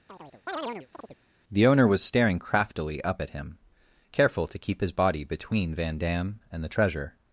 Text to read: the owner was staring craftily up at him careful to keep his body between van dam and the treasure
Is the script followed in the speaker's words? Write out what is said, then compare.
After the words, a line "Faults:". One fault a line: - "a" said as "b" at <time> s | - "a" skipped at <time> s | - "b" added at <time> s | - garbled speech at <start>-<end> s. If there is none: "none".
the owner was staring craftily up at him careful to keep his body between van dam and the treasure
Faults:
none